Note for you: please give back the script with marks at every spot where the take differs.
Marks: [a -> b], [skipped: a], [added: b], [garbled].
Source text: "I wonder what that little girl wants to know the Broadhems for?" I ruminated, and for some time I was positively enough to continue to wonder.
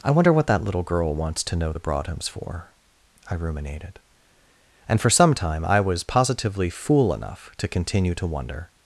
"I wonder what that little girl wants to know the Broadhems for?" I ruminated, and for some time I was positively [added: fool] enough to continue to wonder.